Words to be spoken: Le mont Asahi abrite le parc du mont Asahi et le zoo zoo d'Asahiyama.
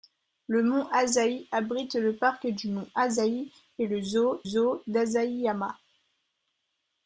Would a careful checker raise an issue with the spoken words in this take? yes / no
no